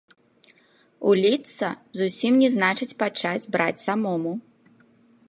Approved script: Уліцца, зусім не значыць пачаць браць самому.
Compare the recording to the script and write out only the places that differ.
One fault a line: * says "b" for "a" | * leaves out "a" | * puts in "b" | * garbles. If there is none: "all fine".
all fine